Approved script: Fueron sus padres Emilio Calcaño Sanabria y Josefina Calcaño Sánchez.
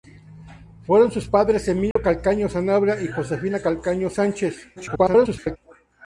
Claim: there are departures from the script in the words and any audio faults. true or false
true